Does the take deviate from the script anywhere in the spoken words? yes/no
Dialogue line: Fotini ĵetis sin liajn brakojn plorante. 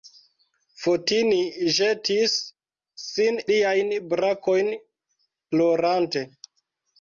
no